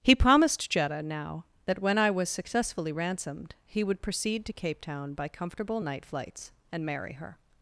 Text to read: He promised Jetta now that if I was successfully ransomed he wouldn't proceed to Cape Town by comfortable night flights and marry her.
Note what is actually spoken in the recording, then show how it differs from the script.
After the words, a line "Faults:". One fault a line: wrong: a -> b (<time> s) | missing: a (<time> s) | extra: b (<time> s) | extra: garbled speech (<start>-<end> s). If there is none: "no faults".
He promised Jetta now that when I was successfully ransomed he would proceed to Cape Town by comfortable night flights and marry her.
Faults:
wrong: if -> when (1.8 s)
wrong: wouldn't -> would (3.8 s)